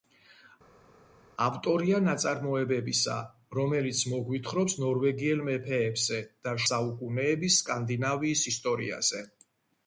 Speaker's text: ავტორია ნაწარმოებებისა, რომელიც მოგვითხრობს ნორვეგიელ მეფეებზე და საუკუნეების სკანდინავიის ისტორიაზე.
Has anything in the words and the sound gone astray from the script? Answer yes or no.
no